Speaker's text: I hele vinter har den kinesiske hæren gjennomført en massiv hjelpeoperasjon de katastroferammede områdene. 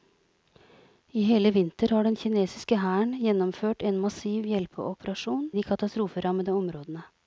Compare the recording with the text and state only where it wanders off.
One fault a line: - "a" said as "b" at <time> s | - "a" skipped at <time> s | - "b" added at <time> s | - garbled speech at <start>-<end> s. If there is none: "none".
none